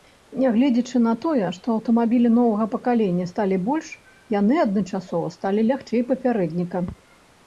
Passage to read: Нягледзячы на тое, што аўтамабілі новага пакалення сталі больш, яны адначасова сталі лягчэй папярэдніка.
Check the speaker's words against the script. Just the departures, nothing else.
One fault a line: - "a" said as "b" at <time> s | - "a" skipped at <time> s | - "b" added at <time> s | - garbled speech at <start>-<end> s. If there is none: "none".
none